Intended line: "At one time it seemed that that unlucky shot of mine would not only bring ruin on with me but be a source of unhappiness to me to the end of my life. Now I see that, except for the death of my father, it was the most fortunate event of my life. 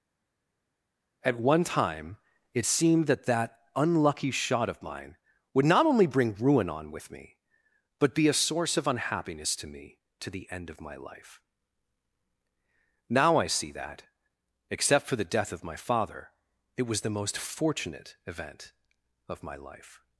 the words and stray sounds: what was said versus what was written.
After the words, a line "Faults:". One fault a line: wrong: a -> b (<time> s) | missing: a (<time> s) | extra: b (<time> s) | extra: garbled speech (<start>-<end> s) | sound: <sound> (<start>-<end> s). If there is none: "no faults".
"At one time it seemed that that unlucky shot of mine would not only bring ruin on with me but be a source of unhappiness to me to the end of my life. Now I see that, except for the death of my father, it was the most fortunate event of my life.
Faults:
no faults